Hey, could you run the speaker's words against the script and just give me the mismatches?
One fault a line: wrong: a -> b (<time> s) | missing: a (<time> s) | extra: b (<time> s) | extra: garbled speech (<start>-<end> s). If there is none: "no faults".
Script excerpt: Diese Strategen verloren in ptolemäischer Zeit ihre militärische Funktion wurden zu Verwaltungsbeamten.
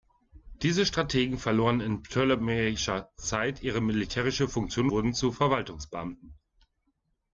no faults